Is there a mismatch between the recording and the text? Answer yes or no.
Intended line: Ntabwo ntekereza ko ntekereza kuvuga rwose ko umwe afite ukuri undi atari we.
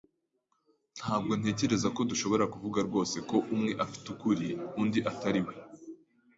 yes